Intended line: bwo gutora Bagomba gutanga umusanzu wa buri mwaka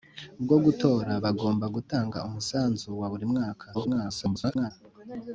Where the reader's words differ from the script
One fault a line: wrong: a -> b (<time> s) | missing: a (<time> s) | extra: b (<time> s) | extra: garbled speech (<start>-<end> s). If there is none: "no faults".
extra: garbled speech (3.7-4.7 s)